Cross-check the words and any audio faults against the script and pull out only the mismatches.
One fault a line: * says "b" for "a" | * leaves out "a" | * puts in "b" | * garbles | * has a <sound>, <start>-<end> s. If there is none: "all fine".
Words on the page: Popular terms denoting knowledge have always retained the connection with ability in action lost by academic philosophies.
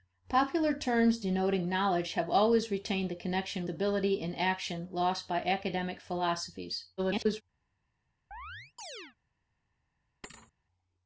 * leaves out "with"
* garbles
* has a chirp, 8.3-9.2 s
* has a thud, 10.2-10.5 s